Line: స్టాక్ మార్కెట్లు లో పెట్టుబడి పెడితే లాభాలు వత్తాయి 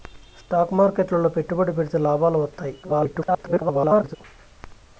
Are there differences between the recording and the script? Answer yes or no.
yes